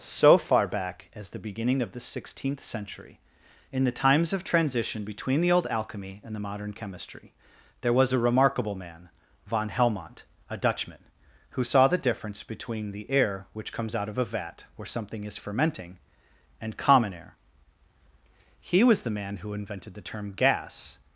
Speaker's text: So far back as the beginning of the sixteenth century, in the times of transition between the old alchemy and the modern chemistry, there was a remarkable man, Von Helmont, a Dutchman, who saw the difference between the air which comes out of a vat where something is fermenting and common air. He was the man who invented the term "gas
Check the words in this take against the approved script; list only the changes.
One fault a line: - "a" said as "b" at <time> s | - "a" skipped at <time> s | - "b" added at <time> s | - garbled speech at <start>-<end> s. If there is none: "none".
none